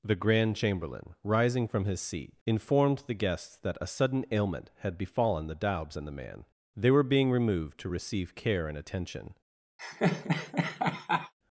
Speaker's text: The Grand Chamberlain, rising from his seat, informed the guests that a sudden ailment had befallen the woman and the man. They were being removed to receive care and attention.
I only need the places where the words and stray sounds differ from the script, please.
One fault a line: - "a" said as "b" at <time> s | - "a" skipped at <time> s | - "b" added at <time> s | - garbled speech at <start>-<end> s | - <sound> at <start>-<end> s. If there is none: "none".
- "woman" said as "daubs" at 5.5 s
- laugh at 9.8-11.3 s